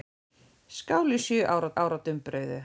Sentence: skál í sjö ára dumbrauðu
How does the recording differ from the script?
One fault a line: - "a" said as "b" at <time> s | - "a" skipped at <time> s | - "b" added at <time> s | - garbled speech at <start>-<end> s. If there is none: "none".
- "ára" added at 1.8 s